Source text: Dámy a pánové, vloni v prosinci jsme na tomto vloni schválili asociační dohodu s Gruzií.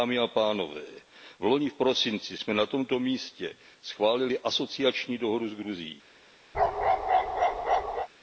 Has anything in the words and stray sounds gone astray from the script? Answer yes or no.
yes